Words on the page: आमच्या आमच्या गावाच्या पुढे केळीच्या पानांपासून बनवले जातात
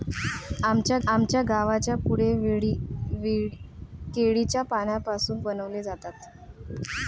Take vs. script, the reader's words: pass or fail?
pass